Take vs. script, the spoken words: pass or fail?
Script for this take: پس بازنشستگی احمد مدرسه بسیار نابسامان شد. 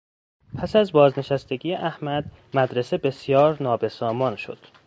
fail